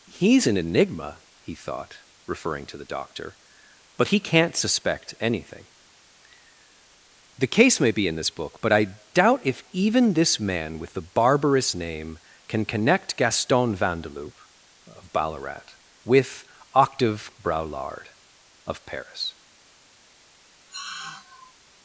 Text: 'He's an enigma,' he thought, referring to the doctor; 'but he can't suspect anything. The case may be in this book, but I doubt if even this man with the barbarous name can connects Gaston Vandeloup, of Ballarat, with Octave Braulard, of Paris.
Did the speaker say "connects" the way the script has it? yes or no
no